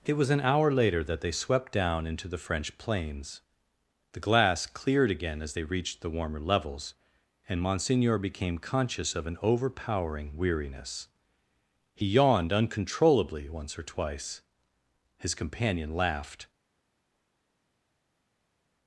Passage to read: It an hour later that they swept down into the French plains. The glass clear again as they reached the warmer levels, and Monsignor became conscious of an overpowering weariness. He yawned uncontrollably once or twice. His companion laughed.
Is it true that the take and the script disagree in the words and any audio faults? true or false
true